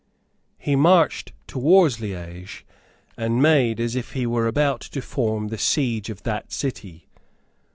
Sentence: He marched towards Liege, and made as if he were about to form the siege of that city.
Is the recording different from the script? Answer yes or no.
no